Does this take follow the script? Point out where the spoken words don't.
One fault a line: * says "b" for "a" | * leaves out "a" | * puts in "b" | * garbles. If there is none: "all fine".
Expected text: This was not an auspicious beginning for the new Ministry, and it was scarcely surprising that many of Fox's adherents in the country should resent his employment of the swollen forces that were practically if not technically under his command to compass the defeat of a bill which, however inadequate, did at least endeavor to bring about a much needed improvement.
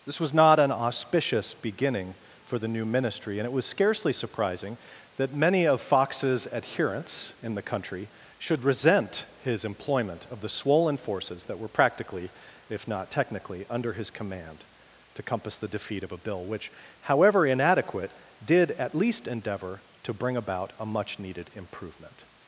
all fine